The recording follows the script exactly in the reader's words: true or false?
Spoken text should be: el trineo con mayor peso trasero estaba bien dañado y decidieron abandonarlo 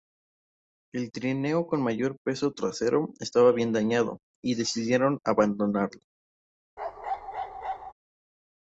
true